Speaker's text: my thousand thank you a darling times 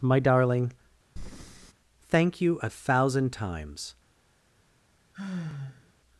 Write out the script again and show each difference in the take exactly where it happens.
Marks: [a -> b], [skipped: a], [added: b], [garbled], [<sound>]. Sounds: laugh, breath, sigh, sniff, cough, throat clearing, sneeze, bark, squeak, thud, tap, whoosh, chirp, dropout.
my [thousand -> darling] [breath] thank you a [darling -> thousand] times [sigh]